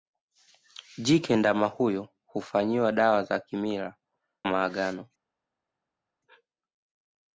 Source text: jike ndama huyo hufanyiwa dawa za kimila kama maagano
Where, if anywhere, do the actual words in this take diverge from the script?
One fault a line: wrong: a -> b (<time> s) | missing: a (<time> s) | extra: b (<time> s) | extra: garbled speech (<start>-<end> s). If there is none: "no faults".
missing: kama (4.0 s)